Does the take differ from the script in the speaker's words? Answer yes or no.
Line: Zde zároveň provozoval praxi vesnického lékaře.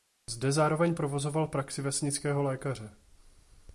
no